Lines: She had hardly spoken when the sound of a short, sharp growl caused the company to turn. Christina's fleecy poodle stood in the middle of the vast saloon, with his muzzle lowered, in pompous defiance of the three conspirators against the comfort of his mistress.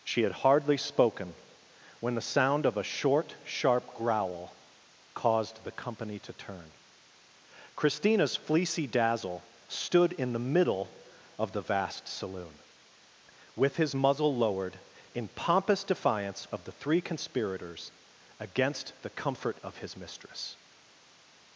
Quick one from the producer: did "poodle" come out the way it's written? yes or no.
no